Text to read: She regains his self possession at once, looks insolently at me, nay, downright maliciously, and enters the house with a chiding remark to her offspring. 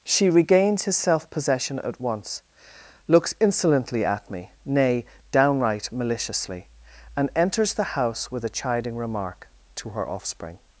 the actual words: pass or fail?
pass